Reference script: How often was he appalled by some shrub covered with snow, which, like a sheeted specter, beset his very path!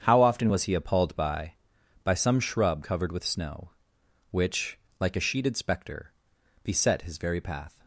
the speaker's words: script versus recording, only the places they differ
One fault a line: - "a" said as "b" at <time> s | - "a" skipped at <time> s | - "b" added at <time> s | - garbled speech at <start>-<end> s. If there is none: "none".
- "by" added at 2.0 s